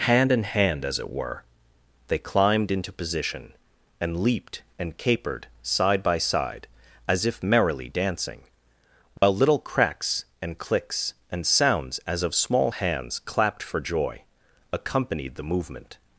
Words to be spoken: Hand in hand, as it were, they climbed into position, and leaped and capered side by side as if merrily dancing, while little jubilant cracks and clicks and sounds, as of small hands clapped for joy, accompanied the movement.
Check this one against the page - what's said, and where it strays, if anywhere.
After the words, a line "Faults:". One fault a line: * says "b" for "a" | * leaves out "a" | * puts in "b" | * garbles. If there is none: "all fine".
Hand in hand, as it were, they climbed into position, and leaped and capered side by side as if merrily dancing, while little cracks and clicks and sounds, as of small hands clapped for joy, accompanied the movement.
Faults:
* leaves out "jubilant"